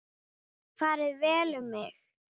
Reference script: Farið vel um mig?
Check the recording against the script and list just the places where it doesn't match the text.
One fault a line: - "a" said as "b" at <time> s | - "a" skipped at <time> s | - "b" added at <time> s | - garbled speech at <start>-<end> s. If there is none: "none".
none